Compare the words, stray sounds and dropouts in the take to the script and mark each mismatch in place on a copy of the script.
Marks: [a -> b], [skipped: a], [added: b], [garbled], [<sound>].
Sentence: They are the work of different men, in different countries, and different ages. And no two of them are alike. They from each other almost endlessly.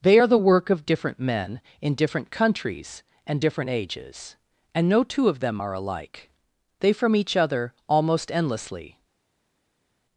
They are the work of different men, in different countries, and different ages. And no two of them are alike. They from each other almost endlessly.